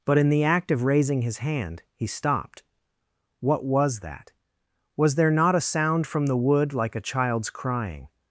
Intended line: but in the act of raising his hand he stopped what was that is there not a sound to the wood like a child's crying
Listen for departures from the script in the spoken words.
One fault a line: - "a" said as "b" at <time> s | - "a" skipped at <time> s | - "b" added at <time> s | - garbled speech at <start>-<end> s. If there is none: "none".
- "is" said as "was" at 5.0 s
- "to" said as "from" at 6.0 s